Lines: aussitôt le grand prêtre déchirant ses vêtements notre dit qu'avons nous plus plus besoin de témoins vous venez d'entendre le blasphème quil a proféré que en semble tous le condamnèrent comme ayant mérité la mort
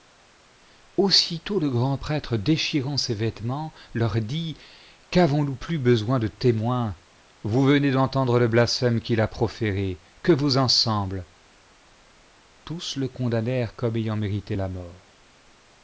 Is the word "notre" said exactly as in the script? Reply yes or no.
no